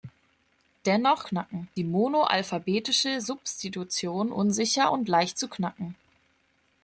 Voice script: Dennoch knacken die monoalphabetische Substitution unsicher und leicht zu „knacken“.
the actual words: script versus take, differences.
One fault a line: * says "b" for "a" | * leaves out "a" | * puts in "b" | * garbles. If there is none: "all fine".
all fine